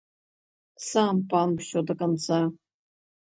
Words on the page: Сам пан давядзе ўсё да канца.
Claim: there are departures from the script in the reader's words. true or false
true